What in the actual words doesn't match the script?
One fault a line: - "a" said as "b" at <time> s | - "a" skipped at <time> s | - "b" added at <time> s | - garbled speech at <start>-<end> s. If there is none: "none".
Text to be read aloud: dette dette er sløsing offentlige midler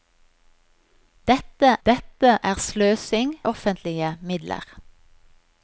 none